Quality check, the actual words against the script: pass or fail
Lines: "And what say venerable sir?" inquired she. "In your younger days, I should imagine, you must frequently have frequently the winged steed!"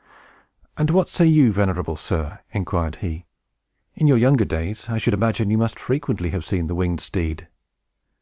fail